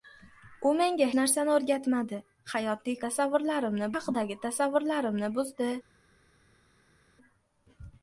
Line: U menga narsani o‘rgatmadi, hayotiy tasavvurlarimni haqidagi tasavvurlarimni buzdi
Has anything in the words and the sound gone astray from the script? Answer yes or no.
no